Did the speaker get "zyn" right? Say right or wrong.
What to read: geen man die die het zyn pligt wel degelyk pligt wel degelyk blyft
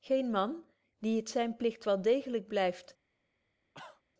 right